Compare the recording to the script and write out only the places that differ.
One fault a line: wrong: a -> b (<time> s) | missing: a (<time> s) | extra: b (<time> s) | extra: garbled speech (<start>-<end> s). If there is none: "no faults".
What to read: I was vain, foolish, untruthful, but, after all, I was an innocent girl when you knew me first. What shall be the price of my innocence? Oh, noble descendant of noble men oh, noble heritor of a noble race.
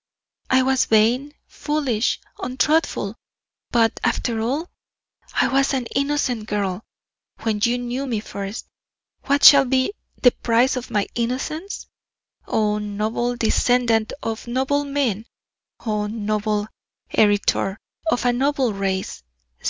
no faults